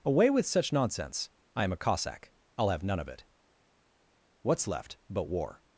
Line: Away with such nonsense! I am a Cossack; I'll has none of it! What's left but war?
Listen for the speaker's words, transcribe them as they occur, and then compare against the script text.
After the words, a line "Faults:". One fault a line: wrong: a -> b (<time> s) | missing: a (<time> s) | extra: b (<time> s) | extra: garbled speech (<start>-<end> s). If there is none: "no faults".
Away with such nonsense! I am a Cossack; I'll have none of it! What's left but war?
Faults:
wrong: has -> have (2.7 s)